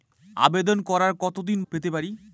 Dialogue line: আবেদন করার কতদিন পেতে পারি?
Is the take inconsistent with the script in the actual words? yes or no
no